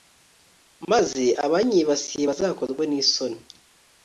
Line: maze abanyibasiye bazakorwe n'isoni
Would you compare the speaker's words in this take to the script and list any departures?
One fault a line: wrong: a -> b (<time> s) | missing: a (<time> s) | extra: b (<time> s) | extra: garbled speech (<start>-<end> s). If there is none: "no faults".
no faults